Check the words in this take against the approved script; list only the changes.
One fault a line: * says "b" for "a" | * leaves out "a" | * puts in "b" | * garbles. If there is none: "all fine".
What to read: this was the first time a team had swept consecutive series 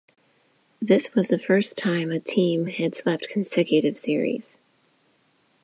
all fine